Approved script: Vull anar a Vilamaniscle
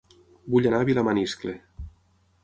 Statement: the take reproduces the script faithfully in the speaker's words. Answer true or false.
true